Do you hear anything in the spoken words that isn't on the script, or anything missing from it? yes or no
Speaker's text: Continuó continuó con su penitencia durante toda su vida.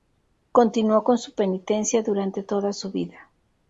yes